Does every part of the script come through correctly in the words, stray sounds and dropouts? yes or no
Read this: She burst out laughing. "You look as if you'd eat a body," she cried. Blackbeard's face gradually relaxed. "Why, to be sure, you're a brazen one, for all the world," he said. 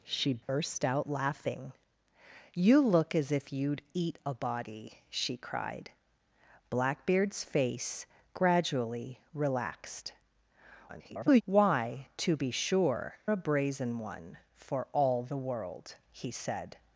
no